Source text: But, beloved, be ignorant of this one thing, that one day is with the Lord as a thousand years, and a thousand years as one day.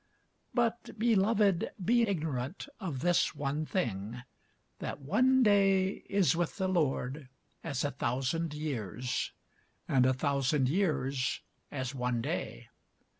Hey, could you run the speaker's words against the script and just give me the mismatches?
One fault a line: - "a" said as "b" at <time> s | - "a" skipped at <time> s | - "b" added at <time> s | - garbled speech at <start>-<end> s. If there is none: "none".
none